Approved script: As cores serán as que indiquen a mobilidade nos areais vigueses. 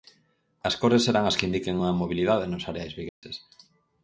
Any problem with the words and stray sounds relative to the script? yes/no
yes